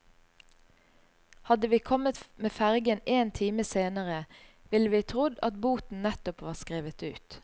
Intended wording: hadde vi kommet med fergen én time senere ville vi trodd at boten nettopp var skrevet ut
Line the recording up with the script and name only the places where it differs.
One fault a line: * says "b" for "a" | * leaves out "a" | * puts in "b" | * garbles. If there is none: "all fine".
all fine